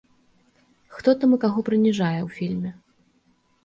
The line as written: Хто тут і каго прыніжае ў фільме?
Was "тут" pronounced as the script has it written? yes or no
no